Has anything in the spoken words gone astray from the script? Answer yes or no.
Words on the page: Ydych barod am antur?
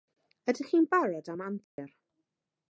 yes